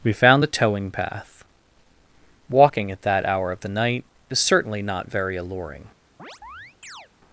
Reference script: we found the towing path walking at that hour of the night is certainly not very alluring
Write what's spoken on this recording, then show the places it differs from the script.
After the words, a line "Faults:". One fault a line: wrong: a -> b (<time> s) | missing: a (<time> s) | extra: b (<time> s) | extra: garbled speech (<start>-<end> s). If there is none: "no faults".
we found the towing path walking at that hour of the night is certainly not very alluring
Faults:
no faults